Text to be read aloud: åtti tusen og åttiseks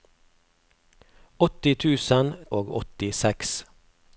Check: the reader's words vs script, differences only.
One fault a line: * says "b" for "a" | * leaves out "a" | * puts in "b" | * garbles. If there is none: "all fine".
all fine